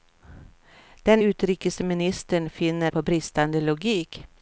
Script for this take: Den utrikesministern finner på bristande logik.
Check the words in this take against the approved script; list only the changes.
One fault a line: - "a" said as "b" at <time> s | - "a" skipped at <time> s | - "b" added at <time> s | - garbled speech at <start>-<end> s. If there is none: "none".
none